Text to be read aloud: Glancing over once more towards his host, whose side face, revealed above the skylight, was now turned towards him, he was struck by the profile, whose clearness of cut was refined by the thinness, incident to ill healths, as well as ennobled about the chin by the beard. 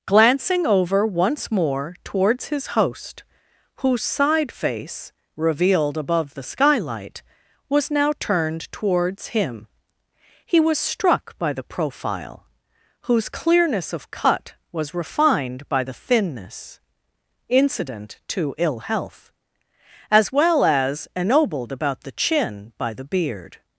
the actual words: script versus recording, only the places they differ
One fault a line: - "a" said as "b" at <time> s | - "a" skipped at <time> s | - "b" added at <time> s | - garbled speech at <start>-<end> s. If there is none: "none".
- "healths" said as "health" at 18.8 s